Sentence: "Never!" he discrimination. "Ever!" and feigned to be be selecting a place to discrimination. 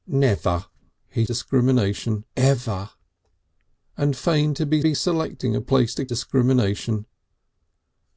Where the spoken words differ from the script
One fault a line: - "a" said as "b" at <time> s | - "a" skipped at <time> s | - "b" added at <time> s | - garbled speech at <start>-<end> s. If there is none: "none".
none